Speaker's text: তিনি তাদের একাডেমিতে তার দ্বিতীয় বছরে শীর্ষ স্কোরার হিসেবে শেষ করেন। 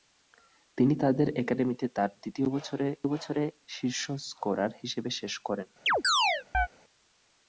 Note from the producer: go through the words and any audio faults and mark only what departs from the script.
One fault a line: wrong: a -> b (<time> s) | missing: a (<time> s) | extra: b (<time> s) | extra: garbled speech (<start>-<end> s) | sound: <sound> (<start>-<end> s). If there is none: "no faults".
extra: বছরে (3.1 s)
sound: chirp (5.9-6.7 s)